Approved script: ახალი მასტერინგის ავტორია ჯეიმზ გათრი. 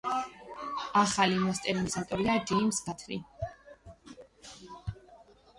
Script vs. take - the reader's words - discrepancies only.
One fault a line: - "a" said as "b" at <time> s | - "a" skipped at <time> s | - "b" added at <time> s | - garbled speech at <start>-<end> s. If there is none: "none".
none